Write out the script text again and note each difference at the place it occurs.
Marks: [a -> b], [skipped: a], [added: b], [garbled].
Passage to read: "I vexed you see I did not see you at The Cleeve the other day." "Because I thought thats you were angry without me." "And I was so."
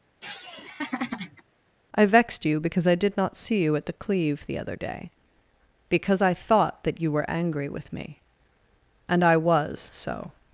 "I vexed you [see -> because] I did not see you at The Cleeve the other day." "Because I thought [thats -> that] you were angry [without -> with] me." "And I was so."